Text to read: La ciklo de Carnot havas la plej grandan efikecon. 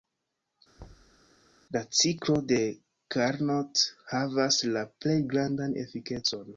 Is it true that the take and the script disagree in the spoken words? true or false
false